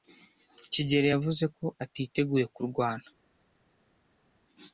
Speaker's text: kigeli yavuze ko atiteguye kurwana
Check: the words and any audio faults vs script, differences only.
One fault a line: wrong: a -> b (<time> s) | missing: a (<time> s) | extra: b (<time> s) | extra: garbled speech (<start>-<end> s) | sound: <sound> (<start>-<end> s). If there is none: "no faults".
no faults